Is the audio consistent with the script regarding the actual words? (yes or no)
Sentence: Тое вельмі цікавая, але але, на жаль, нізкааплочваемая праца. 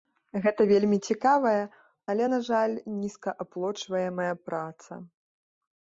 no